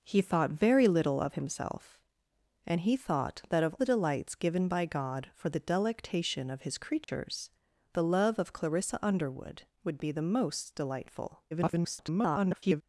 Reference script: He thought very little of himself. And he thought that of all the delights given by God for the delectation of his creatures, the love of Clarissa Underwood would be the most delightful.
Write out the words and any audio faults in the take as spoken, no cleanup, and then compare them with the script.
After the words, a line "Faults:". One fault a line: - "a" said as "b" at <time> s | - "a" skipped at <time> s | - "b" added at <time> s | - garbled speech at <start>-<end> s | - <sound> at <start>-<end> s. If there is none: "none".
He thought very little of himself. And he thought that of the delights given by God for the delectation of his creatures, the love of Clarissa Underwood would be the most delightful. [garbled]
Faults:
- "all" skipped at 3.7 s
- dropout at 7.0-7.1 s
- garbled speech at 11.5-12.8 s